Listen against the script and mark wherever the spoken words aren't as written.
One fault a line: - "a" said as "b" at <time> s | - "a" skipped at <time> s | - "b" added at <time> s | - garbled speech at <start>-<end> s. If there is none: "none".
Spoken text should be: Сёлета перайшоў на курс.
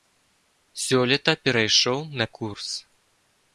none